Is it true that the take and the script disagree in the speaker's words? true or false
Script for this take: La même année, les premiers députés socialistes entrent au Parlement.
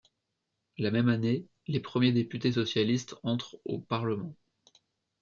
false